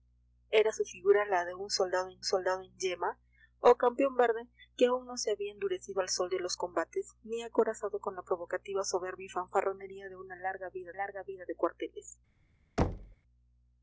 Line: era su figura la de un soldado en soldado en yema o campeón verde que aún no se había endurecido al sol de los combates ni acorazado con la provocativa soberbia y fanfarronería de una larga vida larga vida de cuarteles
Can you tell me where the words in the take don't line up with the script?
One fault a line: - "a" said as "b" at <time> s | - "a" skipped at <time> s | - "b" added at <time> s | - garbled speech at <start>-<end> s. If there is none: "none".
none